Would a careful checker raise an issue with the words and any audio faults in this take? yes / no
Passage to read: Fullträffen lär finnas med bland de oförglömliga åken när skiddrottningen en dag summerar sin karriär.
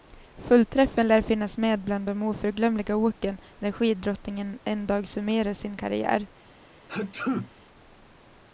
yes